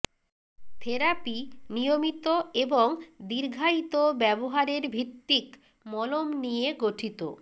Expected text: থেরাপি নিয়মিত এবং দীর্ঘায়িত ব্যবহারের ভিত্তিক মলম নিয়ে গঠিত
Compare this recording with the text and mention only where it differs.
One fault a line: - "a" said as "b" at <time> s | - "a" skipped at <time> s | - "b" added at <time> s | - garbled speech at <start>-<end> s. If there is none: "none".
none